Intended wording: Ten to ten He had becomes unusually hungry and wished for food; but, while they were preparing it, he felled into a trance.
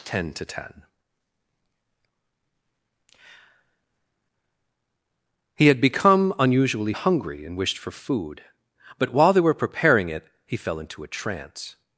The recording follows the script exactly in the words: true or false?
false